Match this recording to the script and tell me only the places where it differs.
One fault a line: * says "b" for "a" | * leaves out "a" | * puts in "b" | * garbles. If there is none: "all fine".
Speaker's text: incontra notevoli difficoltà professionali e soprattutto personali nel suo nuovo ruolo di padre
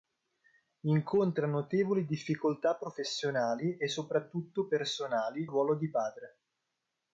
* leaves out "nel suo nuovo"